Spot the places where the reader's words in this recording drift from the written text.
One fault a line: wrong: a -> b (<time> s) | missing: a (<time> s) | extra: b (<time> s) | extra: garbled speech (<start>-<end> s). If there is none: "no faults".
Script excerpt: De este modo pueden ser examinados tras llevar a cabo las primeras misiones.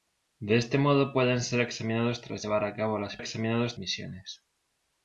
wrong: primeras -> examinados (3.2 s)